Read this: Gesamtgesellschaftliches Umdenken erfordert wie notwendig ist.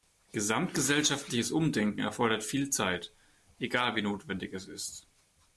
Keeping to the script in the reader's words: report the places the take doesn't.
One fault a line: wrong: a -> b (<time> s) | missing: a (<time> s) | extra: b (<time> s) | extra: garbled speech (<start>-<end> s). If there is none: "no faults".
extra: viel Zeit egal (2.4 s)
extra: es (4.5 s)